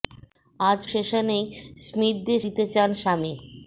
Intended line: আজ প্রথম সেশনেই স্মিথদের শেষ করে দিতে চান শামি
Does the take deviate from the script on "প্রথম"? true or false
true